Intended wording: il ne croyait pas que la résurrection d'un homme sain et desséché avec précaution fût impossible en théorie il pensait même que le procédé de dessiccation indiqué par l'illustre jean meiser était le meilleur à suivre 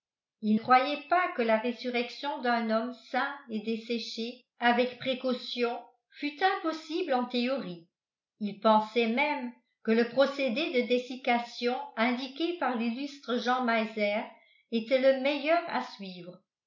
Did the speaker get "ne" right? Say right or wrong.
wrong